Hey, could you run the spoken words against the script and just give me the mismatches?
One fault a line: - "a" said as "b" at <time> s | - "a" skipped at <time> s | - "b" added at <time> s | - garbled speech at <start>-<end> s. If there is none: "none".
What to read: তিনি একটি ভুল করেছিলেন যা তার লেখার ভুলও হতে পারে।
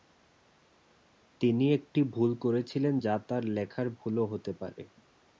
none